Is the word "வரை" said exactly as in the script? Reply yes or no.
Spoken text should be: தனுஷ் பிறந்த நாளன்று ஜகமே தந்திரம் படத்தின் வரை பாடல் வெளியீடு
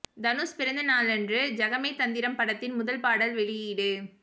no